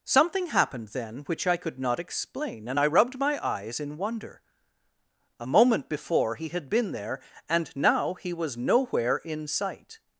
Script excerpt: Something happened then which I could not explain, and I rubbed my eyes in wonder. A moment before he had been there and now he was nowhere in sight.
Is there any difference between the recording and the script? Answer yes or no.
no